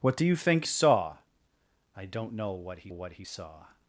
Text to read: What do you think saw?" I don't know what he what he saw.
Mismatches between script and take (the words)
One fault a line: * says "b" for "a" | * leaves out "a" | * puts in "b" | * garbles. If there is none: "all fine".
all fine